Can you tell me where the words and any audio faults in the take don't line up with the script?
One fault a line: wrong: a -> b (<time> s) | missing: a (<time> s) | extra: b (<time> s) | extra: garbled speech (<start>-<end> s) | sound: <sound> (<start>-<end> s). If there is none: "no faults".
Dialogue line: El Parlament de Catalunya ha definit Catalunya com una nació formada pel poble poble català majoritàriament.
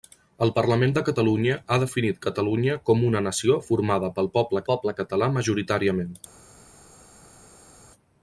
no faults